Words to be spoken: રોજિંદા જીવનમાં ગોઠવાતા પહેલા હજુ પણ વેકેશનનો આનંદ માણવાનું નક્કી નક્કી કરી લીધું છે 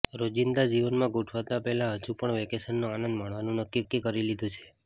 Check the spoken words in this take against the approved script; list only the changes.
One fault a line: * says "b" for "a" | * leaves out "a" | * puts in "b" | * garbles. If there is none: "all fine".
all fine